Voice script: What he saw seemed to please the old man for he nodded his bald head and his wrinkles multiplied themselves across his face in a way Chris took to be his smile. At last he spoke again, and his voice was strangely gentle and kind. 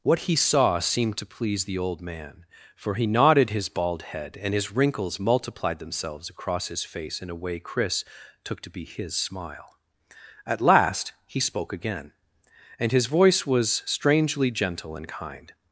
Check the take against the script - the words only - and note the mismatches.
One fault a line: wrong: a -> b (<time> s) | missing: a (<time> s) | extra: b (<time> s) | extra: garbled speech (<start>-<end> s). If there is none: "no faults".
no faults